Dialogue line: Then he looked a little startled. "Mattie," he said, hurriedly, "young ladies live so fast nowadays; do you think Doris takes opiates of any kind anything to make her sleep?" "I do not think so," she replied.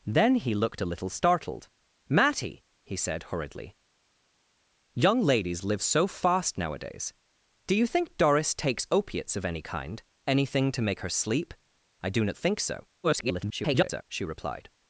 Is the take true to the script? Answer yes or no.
no